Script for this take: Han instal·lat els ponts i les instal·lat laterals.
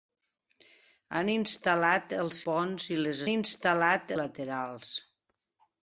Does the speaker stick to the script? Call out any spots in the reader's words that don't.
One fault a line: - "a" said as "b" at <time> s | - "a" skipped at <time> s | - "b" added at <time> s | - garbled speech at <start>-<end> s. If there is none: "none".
none